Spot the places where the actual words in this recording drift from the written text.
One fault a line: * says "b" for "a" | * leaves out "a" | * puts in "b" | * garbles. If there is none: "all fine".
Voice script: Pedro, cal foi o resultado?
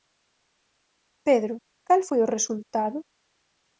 all fine